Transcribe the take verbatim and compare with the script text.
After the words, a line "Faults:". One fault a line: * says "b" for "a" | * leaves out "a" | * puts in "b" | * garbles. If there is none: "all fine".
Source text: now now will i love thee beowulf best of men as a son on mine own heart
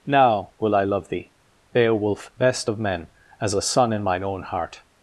now will i love thee beowulf best of men as a son in mine own heart
Faults:
* leaves out "now"
* says "in" for "on"